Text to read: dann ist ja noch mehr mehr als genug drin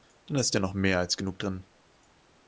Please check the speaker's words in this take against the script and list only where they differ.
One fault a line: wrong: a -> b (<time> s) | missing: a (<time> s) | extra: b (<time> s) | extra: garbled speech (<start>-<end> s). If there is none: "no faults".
missing: mehr (1.0 s)